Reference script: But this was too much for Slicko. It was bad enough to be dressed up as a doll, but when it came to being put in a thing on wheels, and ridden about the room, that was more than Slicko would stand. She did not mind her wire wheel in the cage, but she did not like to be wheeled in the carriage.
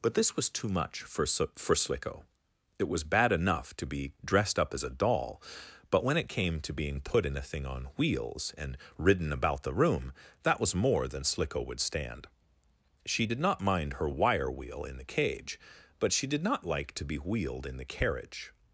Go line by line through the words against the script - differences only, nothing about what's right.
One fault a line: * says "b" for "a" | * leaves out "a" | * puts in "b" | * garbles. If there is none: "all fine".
* puts in "for"